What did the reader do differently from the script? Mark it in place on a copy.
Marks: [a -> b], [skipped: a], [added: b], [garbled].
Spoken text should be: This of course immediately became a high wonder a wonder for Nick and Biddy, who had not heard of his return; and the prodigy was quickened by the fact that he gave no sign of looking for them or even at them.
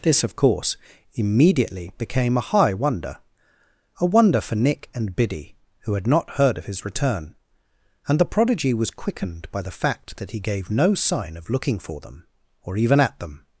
This of course immediately became a high wonder a wonder for Nick and Biddy, who had not heard of his return; and the prodigy was quickened by the fact that he gave no sign of looking for them or even at them.